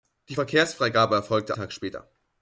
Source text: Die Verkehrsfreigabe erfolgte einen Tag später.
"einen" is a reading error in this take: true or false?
true